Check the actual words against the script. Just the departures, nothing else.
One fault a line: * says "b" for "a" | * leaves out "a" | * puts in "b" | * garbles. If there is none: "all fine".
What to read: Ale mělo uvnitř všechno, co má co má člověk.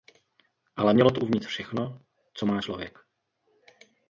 * puts in "to"
* leaves out "co má"